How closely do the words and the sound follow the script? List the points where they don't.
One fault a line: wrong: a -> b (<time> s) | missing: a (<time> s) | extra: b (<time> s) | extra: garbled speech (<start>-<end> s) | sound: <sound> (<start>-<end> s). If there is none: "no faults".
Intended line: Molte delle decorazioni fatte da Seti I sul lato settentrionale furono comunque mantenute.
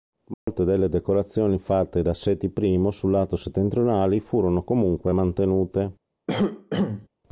sound: dropout (0.3-0.5 s)
sound: cough (6.3-7.1 s)